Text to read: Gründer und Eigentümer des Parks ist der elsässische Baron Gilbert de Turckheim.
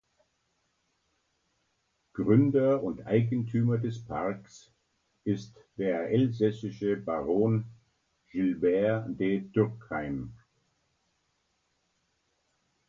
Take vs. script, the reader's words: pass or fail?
pass